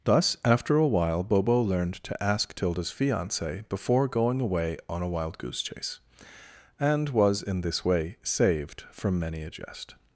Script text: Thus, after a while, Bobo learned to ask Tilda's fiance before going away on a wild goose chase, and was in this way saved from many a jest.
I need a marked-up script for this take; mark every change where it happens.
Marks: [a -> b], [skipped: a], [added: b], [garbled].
Thus, after a while, Bobo learned to ask Tilda's fiance before going away on a wild goose chase, and was in this way saved from many a jest.